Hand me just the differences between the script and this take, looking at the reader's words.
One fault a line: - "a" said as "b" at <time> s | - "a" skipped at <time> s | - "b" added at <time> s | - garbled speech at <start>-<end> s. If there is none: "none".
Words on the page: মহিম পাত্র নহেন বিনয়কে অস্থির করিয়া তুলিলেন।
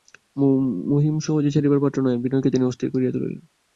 - "সহজে ছাড়িবার" added at 1.2 s
- "তিনি" added at 2.5 s